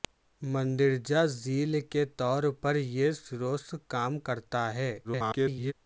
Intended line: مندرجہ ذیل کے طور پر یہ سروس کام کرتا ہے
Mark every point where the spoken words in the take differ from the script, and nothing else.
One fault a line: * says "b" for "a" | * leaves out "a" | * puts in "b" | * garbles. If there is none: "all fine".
* garbles